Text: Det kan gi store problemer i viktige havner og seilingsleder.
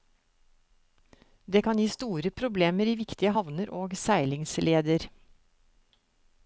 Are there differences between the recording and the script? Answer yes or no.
no